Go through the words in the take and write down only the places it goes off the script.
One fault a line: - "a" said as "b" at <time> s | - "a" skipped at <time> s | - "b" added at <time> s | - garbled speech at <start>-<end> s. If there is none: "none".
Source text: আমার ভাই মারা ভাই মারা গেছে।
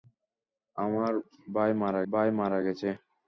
none